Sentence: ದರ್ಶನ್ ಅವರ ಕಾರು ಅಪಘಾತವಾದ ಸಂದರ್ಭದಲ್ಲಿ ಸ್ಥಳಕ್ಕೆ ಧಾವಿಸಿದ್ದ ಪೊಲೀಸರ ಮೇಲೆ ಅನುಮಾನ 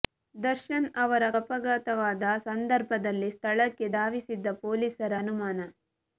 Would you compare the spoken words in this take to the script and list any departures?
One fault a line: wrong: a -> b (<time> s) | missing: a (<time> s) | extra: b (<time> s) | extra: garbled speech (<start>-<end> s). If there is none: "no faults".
missing: ಕಾರು (1.2 s)
missing: ಮೇಲೆ (5.1 s)